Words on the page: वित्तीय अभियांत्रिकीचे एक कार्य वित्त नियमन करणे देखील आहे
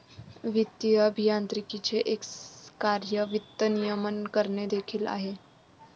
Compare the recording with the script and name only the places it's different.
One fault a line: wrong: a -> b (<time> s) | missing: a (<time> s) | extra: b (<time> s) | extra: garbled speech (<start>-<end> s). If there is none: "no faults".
no faults